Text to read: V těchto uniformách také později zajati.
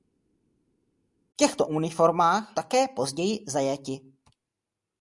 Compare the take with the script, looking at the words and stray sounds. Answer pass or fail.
pass